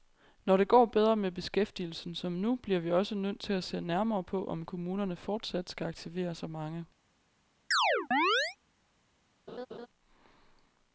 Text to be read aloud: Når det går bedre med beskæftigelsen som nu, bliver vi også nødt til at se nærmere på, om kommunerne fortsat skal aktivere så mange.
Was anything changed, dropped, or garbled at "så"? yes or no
no